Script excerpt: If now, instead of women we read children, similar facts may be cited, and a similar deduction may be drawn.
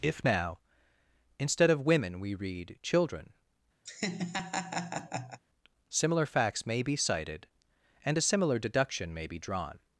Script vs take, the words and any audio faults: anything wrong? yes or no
yes